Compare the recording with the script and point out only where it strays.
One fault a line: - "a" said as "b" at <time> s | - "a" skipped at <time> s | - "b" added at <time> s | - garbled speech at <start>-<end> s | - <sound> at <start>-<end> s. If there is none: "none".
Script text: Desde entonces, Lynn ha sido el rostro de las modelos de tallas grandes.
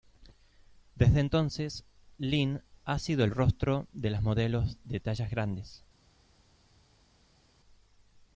none